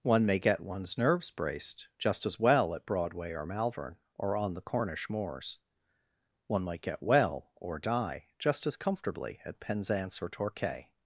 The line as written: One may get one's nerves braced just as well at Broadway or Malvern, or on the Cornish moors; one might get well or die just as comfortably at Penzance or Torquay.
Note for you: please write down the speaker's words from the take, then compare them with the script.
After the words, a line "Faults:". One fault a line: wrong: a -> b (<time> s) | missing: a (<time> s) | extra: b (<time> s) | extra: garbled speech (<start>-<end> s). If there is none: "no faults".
One may get one's nerves braced just as well at Broadway or Malvern, or on the Cornish moors; one might get well or die just as comfortably at Penzance or Torquay.
Faults:
no faults